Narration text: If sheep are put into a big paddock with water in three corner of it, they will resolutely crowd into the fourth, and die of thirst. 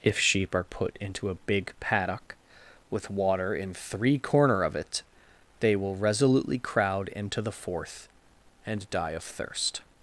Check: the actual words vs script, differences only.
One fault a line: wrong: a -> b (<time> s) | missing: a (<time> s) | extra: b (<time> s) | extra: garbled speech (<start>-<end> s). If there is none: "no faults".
no faults